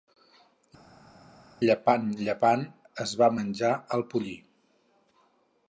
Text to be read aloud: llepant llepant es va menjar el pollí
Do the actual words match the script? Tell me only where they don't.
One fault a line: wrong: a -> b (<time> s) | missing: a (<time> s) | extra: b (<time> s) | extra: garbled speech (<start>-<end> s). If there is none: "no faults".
no faults